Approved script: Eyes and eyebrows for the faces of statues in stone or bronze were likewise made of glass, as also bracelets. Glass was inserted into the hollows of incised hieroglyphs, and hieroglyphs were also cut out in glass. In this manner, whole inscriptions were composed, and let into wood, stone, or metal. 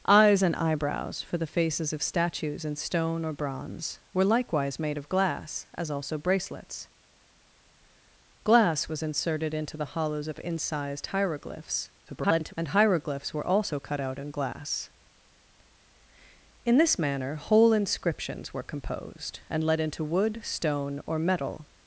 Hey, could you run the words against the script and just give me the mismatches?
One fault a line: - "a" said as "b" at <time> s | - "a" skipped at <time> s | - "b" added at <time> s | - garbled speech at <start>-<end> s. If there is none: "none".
- garbled speech at 12.1-12.5 s